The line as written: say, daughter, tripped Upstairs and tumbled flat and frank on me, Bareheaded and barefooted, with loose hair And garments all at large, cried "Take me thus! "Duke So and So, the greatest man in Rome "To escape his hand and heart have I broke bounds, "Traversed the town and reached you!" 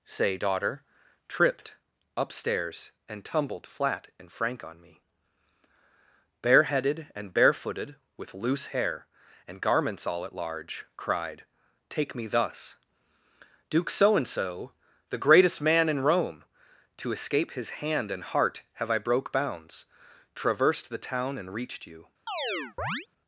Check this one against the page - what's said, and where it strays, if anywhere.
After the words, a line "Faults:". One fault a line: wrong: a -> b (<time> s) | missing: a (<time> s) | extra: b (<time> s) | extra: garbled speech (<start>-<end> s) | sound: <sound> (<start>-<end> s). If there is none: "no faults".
say, daughter, tripped Upstairs and tumbled flat and frank on me, Bareheaded and barefooted, with loose hair And garments all at large, cried "Take me thus! "Duke So and So, the greatest man in Rome "To escape his hand and heart have I broke bounds, "Traversed the town and reached you!"
Faults:
sound: chirp (22.3-23.1 s)